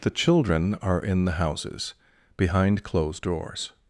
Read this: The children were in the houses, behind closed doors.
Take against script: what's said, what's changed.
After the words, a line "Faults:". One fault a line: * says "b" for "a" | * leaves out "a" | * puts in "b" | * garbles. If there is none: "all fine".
The children are in the houses, behind closed doors.
Faults:
* says "are" for "were"